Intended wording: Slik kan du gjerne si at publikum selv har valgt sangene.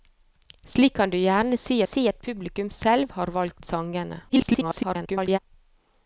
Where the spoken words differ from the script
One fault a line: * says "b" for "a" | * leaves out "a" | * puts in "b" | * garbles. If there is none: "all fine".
* puts in "si"
* garbles